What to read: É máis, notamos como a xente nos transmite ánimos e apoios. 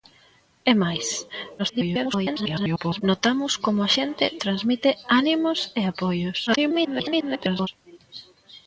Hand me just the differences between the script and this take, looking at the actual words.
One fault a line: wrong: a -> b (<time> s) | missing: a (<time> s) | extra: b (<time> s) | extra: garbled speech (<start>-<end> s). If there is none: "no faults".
extra: garbled speech (1.6-3.0 s)
missing: nos (4.2 s)
extra: garbled speech (6.5-7.7 s)